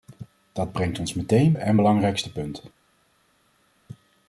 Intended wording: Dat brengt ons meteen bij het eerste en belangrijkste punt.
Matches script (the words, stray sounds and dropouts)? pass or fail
fail